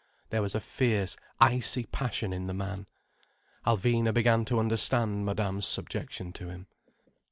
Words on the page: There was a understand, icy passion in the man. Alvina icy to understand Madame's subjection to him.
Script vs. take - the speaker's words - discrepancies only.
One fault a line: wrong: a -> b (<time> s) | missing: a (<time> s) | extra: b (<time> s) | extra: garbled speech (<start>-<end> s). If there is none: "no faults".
wrong: understand -> fierce (0.6 s)
wrong: icy -> began (4.1 s)